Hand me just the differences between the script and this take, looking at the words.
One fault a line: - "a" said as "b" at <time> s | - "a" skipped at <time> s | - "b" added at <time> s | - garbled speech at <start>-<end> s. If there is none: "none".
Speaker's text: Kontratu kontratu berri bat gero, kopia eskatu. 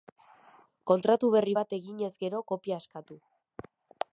- "kontratu" skipped at 1.3 s
- "eginez" added at 1.8 s